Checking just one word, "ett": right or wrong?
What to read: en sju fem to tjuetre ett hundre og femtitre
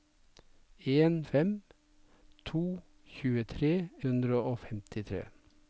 wrong